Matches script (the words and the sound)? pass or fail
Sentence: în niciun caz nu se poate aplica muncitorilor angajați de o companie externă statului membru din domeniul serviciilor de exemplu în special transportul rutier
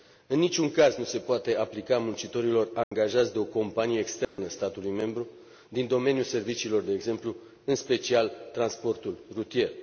fail